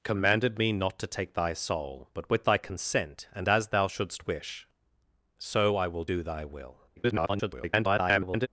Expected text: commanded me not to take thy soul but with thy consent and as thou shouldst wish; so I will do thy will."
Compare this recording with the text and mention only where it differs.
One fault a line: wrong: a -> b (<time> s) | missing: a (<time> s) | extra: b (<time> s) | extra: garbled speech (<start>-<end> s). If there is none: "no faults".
extra: garbled speech (7.0-8.5 s)